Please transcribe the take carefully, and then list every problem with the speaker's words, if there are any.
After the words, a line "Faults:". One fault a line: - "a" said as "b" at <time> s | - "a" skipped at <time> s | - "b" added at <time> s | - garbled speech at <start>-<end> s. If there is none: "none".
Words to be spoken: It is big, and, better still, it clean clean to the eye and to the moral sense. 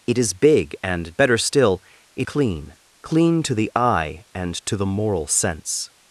It is big, and, better still, it clean clean to the eye and to the moral sense.
Faults:
none